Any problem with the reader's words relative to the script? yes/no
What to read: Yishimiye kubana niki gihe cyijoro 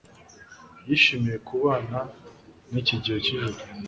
no